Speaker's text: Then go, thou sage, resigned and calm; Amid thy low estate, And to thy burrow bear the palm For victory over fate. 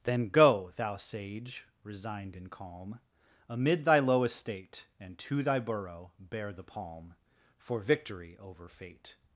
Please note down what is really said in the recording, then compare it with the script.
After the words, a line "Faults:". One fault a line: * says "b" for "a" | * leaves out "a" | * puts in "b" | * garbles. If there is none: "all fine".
Then go, thou sage, resigned and calm; Amid thy low estate, And to thy burrow bear the palm For victory over fate.
Faults:
all fine